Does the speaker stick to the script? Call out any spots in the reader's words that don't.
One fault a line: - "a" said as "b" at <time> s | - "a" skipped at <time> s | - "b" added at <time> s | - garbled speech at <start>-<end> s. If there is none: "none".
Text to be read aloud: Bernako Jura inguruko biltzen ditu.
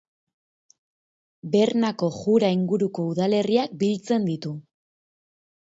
- "udalerriak" added at 3.1 s